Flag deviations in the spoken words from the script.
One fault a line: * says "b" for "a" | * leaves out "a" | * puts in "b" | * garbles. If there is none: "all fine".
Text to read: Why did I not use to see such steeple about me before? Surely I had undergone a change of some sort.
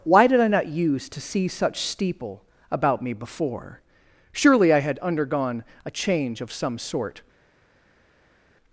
all fine